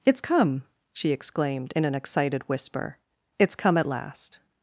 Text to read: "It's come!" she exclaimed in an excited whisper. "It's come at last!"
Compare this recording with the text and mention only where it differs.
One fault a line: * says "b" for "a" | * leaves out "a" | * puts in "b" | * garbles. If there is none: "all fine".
all fine